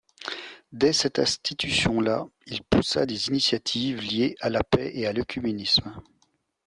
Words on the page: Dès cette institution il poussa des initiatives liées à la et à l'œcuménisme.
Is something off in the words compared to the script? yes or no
yes